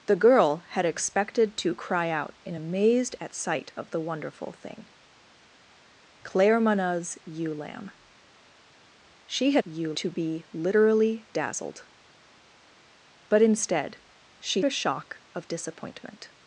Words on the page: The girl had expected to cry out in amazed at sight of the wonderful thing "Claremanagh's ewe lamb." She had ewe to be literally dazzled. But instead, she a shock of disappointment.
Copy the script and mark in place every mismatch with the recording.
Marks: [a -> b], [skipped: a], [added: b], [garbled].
The girl had expected to cry out in amazed at sight of the wonderful thing "Claremanagh's ewe lamb." She had ewe to be literally dazzled. But instead, she a shock of disappointment.